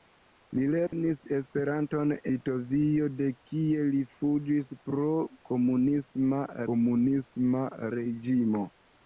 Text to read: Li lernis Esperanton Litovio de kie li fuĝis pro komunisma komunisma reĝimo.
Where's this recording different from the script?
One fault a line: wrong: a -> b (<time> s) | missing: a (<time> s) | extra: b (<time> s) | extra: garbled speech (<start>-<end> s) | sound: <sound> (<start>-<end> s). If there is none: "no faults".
sound: dropout (0.9-0.9 s)